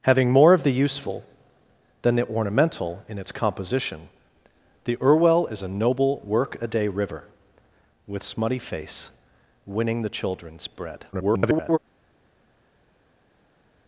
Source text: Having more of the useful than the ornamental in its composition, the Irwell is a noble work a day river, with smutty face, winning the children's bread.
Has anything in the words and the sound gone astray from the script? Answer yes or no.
yes